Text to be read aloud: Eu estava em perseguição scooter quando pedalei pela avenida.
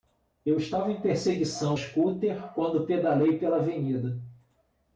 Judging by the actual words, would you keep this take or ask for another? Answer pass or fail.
pass